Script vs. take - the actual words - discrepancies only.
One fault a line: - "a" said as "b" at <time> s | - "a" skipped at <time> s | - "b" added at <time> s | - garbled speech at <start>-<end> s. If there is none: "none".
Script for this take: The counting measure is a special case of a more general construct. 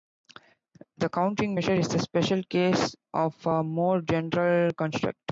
none